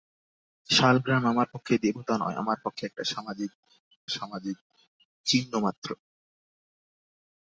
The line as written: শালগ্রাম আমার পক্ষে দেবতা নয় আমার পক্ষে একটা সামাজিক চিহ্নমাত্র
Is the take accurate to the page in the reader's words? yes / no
no